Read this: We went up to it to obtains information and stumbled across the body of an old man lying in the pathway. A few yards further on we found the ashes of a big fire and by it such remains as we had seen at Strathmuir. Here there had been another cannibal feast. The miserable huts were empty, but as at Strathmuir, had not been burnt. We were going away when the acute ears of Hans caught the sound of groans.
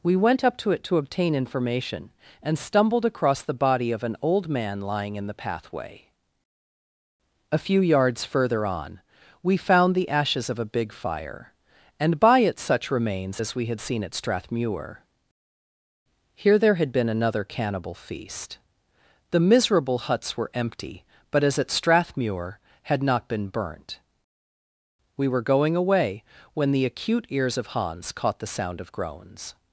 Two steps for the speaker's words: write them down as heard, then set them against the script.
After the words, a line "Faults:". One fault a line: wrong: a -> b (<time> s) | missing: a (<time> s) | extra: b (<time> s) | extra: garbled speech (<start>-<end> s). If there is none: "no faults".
We went up to it to obtain information and stumbled across the body of an old man lying in the pathway. A few yards further on we found the ashes of a big fire and by it such remains as we had seen at Strathmuir. Here there had been another cannibal feast. The miserable huts were empty, but as at Strathmuir, had not been burnt. We were going away when the acute ears of Hans caught the sound of groans.
Faults:
wrong: obtains -> obtain (1.0 s)